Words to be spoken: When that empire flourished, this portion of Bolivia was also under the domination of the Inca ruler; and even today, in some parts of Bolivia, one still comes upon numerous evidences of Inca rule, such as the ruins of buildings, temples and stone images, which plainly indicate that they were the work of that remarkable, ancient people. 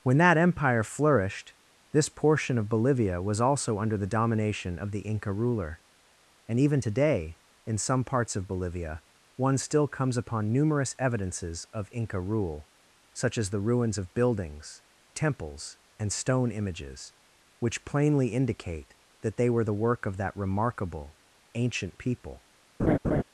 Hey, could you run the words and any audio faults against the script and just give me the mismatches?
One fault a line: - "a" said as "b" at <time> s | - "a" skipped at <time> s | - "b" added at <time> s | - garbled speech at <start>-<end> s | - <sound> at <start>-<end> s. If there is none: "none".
- laugh at 22.8-23.2 s